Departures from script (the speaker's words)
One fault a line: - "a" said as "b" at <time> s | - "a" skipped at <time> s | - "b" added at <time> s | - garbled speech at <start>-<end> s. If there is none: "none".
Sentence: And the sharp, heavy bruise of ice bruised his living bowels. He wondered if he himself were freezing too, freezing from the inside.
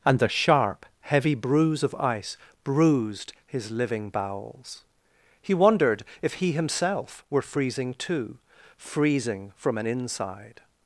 - "the" said as "an" at 9.8 s